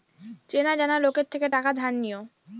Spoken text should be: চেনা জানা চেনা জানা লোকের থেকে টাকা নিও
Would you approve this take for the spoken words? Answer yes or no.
no